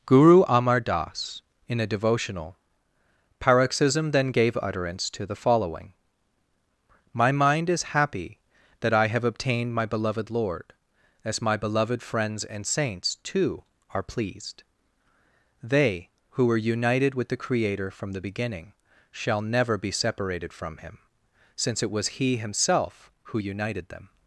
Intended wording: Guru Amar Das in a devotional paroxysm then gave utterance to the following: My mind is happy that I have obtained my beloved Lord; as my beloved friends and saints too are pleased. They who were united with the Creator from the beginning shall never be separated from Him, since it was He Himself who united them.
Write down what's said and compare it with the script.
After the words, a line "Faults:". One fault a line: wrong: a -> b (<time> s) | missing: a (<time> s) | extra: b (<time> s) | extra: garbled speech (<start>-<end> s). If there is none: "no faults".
Guru Amar Das in a devotional paroxysm then gave utterance to the following: My mind is happy that I have obtained my beloved Lord; as my beloved friends and saints too are pleased. They who were united with the Creator from the beginning shall never be separated from Him, since it was He Himself who united them.
Faults:
no faults